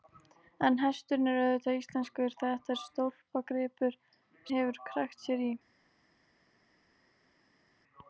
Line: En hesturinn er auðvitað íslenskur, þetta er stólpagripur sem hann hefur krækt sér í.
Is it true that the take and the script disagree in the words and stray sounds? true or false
true